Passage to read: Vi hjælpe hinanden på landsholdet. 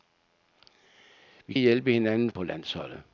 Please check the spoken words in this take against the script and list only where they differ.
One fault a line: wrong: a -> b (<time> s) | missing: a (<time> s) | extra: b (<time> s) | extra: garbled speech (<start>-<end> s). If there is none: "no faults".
no faults